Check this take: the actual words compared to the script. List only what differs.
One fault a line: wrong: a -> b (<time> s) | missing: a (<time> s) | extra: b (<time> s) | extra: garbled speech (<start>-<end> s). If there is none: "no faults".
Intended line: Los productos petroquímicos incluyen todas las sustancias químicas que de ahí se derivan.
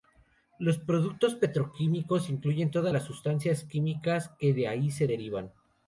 no faults